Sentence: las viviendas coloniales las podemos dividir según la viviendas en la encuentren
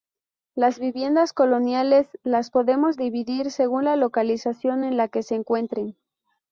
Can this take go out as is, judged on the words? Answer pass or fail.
fail